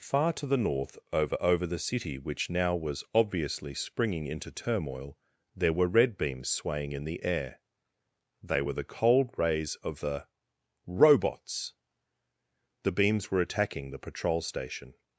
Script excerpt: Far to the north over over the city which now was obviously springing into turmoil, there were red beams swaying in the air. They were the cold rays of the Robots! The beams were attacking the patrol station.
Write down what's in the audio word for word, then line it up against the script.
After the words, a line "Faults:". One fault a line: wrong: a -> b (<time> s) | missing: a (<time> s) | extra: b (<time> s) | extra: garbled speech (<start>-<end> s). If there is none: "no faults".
Far to the north over over the city which now was obviously springing into turmoil, there were red beams swaying in the air. They were the cold rays of the Robots! The beams were attacking the patrol station.
Faults:
no faults